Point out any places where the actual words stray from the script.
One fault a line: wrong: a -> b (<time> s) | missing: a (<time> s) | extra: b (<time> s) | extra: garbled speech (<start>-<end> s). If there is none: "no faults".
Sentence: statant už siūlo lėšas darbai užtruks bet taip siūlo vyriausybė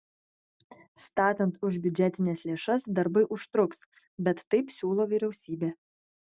wrong: siūlo -> biudžetines (1.8 s)